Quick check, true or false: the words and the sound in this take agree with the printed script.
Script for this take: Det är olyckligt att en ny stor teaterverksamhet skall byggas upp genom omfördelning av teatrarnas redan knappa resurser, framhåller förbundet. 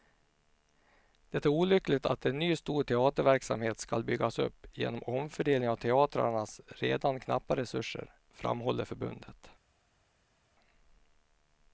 true